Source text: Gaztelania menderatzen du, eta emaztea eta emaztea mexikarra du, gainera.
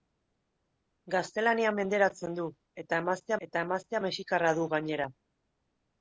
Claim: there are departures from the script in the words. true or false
false